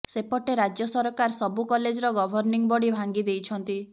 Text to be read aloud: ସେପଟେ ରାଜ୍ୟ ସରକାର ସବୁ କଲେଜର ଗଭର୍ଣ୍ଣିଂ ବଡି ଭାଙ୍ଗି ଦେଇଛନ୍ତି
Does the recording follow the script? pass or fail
pass